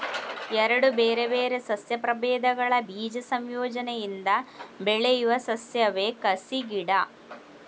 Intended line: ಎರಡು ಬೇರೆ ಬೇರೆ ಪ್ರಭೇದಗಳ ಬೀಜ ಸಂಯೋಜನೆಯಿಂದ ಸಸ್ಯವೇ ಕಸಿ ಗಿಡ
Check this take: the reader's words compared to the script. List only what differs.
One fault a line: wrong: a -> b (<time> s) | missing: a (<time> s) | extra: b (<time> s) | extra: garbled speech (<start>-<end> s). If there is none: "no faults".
extra: ಸಸ್ಯ (1.7 s)
extra: ಬೆಳೆಯುವ (4.8 s)